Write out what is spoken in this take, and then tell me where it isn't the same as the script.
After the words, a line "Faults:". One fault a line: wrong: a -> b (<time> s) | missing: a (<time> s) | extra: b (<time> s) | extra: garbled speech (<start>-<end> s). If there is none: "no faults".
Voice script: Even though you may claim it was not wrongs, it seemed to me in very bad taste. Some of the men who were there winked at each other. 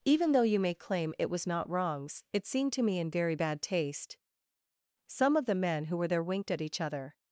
Even though you may claim it was not wrongs, it seemed to me in very bad taste. Some of the men who were there winked at each other.
Faults:
no faults